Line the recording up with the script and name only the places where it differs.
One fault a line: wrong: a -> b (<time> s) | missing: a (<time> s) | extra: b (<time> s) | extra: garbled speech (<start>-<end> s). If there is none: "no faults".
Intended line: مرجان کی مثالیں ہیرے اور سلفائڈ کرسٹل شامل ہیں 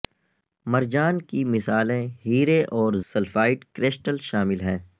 no faults